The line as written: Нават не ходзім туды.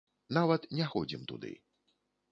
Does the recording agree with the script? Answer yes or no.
yes